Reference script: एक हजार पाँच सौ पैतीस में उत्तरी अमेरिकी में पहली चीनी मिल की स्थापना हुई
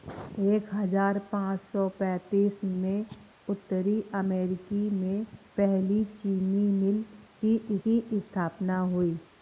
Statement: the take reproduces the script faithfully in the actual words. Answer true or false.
false